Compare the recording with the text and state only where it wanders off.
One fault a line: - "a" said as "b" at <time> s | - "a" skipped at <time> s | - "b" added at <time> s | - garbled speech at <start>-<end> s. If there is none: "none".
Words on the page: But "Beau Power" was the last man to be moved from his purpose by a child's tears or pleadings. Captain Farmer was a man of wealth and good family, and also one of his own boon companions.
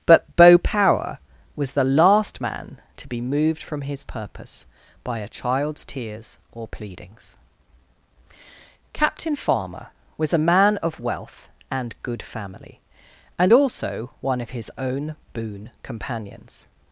none